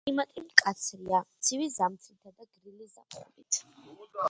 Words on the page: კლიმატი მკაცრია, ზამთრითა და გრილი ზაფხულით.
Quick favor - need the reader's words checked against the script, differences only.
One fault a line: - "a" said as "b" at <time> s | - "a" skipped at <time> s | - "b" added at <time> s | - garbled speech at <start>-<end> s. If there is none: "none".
- "ცივი" added at 1.5 s